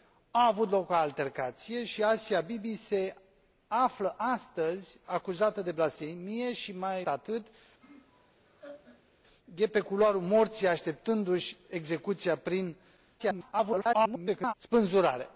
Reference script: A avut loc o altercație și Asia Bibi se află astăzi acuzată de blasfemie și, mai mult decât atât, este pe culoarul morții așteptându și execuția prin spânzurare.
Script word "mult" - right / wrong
wrong